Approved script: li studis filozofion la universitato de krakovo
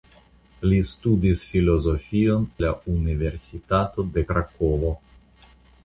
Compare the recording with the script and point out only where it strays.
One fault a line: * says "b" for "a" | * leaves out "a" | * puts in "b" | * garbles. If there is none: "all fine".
all fine